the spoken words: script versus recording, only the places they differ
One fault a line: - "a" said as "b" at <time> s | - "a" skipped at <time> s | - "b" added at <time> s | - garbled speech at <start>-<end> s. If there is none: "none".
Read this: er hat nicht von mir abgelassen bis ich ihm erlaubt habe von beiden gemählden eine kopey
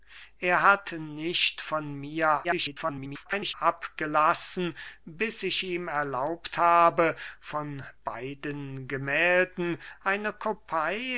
- garbled speech at 2.4-3.5 s